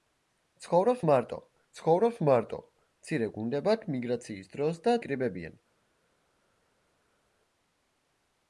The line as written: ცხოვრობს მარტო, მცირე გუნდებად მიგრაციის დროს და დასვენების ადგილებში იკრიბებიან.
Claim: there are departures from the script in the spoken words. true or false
true